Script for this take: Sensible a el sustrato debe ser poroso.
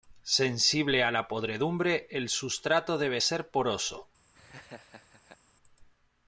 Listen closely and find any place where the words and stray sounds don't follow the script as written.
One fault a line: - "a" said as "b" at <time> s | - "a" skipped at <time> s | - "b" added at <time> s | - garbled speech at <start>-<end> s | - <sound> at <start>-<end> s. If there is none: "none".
- "la podredumbre" added at 1.1 s
- laugh at 4.3-5.4 s